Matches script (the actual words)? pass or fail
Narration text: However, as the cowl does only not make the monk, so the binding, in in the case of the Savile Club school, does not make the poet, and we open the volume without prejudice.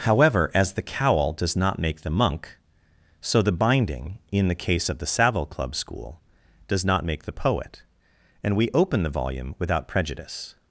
fail